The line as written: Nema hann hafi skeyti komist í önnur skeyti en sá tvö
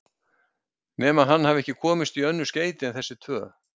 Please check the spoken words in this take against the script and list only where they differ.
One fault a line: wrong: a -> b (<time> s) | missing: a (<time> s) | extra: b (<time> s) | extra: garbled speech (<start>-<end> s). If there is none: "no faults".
wrong: skeyti -> ekki (1.6 s)
wrong: sá -> þessi (3.0 s)